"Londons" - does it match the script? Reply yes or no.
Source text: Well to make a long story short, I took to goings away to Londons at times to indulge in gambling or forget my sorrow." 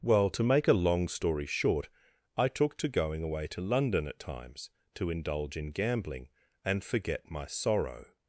no